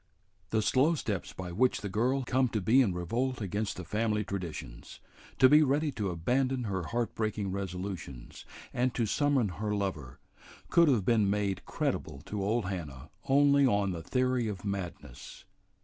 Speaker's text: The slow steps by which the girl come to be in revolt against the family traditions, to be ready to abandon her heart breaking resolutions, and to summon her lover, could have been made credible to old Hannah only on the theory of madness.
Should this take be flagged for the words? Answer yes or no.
no